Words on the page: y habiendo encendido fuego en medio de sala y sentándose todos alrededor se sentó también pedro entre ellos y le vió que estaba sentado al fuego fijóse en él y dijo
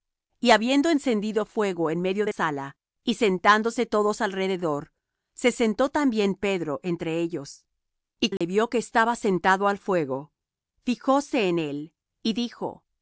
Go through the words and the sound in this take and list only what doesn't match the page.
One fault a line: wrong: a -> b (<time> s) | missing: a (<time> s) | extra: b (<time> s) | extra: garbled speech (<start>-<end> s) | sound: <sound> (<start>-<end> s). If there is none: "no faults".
sound: dropout (8.4-8.4 s)